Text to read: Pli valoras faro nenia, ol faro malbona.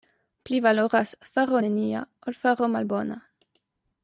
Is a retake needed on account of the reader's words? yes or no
no